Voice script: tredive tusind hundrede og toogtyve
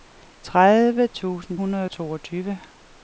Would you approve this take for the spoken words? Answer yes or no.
yes